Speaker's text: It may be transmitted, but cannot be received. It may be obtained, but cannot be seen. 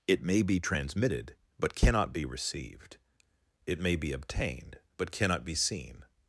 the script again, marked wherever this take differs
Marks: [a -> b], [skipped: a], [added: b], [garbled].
It may be transmitted, but cannot be received. It may be obtained, but cannot be seen.